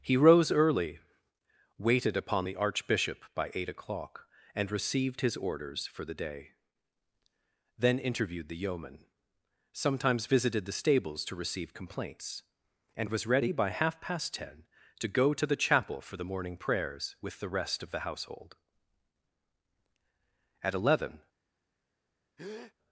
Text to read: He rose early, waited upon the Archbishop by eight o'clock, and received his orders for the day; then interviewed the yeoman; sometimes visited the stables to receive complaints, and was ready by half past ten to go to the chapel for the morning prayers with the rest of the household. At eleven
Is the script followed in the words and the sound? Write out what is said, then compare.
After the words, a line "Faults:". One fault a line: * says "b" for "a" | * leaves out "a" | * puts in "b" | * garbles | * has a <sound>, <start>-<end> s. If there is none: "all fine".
He rose early, waited upon the Archbishop by eight o'clock, and received his orders for the day; then interviewed the yeoman; sometimes visited the stables to receive complaints, and was ready by half past ten to go to the chapel for the morning prayers with the rest of the household. At eleven
Faults:
* has a breath, 22.4-22.7 s